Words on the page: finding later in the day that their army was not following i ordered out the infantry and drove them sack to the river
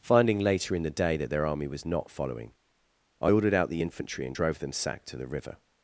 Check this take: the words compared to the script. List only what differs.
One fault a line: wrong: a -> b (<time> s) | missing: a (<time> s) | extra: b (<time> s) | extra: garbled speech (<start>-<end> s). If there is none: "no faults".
no faults